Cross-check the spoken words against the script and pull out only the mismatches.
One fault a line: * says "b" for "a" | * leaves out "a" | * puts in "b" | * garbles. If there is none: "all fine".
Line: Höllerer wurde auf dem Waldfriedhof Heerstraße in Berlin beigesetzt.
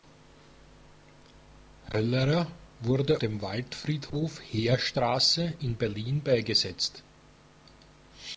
* leaves out "auf"